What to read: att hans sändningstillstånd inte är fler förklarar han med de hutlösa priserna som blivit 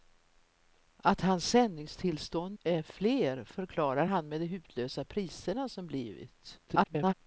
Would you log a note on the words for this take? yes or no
yes